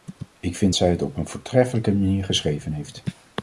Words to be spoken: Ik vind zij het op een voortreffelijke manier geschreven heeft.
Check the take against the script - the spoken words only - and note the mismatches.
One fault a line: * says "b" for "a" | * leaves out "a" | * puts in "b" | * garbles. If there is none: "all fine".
all fine